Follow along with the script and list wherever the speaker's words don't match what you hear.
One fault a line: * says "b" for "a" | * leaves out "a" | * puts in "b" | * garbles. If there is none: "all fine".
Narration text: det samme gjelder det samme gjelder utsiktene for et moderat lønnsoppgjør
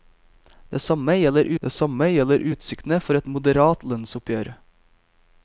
all fine